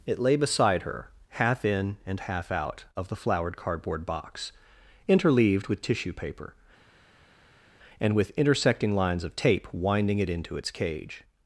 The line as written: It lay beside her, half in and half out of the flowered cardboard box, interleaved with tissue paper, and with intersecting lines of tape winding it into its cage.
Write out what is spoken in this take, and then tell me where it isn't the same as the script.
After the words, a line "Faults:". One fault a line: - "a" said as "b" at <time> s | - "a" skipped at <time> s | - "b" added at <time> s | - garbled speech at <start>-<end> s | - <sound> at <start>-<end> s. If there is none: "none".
It lay beside her, half in and half out of the flowered cardboard box, interleaved with tissue paper, and with intersecting lines of tape winding it into its cage.
Faults:
none